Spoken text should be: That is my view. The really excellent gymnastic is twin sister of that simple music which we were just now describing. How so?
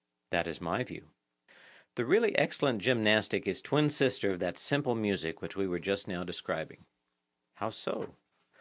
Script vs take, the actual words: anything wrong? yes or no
no